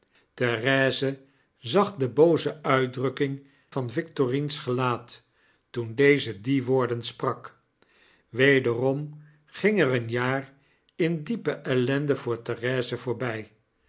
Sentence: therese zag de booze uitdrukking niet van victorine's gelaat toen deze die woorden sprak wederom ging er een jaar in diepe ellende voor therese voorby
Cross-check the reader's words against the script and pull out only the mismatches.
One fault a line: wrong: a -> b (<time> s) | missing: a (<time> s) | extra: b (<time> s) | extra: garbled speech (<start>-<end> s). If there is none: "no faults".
missing: niet (3.5 s)